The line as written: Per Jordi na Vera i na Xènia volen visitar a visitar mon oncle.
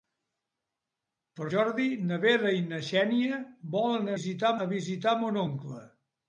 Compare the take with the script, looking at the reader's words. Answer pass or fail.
pass